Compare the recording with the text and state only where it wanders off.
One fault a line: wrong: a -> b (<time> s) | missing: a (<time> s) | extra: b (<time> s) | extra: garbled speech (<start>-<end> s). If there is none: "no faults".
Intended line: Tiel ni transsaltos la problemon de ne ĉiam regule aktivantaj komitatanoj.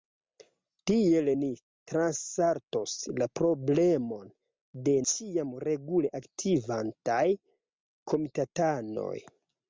missing: ne (5.0 s)